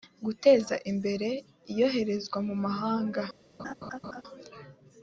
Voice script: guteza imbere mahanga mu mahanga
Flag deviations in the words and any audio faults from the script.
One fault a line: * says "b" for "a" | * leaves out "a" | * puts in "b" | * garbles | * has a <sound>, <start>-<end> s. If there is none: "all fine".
* says "iyoherezwa" for "mahanga"
* has a laugh, 3.6-4.2 s